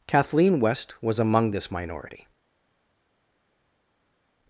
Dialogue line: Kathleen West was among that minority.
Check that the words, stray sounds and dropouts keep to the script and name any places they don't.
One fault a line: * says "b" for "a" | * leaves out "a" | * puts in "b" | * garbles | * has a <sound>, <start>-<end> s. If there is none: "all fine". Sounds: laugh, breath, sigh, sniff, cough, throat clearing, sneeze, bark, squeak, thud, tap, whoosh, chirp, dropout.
* says "this" for "that"